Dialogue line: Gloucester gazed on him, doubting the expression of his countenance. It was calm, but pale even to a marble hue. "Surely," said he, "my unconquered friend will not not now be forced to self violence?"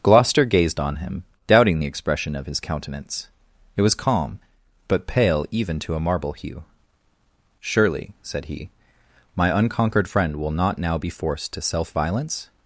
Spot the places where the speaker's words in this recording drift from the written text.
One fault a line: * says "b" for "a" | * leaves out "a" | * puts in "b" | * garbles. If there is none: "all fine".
* leaves out "not"